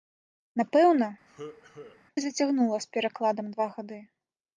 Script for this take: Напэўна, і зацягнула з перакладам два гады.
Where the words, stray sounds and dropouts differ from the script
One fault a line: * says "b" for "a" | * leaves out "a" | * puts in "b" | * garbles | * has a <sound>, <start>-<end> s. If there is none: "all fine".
* has a cough, 1.3-2.0 s